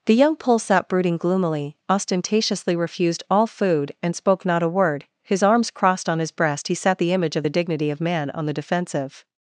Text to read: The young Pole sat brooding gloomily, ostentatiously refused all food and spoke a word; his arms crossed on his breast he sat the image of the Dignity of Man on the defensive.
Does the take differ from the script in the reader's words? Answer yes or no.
yes